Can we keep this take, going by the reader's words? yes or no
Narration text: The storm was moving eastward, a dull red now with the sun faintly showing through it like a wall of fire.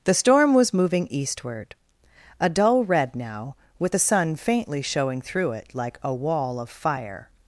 yes